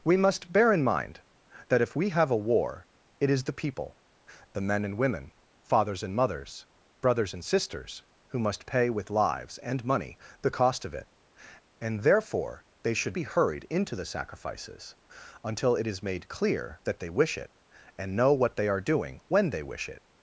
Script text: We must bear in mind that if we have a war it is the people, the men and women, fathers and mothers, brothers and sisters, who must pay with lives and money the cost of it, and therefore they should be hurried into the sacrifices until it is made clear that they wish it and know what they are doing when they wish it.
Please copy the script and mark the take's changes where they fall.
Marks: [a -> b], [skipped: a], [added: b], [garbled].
We must bear in mind that if we have a war it is the people, the men and women, fathers and mothers, brothers and sisters, who must pay with lives and money the cost of it, and therefore they should be hurried into the sacrifices until it is made clear that they wish it and know what they are doing when they wish it.